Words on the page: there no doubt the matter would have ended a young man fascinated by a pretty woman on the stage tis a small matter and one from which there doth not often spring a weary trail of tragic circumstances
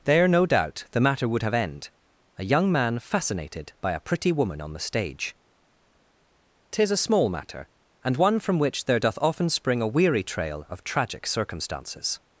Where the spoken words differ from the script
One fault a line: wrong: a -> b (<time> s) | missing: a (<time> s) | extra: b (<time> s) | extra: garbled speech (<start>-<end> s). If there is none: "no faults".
wrong: ended -> end (1.5 s)
missing: not (9.2 s)